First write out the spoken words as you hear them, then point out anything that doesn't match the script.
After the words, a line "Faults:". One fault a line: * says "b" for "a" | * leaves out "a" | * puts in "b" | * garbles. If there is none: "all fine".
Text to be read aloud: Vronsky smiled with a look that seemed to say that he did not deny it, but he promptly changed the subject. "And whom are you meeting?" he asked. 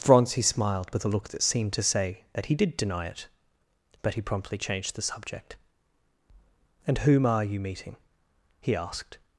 Vronsky smiled with a look that seemed to say that he did deny it, but he promptly changed the subject. "And whom are you meeting?" he asked.
Faults:
* leaves out "not"